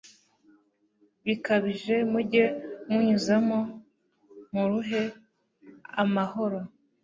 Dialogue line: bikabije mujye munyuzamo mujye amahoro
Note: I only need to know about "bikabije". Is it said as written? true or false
true